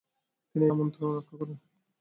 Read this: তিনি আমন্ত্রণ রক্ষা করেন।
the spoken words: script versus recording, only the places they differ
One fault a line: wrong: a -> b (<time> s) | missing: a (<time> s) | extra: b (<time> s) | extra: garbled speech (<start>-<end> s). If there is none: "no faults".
no faults